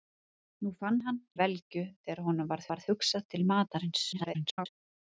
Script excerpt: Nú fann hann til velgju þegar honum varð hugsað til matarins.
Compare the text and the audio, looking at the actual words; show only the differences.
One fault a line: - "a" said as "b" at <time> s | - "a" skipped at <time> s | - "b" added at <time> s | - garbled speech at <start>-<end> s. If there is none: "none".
- "til" skipped at 1.2 s
- "varð" added at 2.7 s
- garbled speech at 4.1-4.7 s